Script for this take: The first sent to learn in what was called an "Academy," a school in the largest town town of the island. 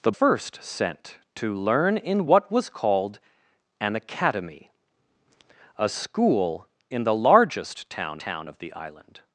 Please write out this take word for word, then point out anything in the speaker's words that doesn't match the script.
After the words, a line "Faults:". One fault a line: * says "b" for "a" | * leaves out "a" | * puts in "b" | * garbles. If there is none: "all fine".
The first sent to learn in what was called an "Academy," a school in the largest town town of the island.
Faults:
all fine